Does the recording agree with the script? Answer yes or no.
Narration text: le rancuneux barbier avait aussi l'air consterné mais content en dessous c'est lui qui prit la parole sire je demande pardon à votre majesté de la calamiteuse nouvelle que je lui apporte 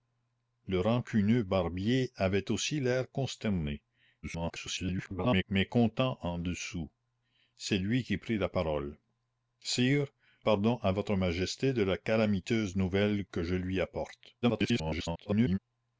no